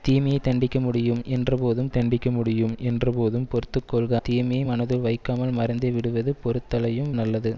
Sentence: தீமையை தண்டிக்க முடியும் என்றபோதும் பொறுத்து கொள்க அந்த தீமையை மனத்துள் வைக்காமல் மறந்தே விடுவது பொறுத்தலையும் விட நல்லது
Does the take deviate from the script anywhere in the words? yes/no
yes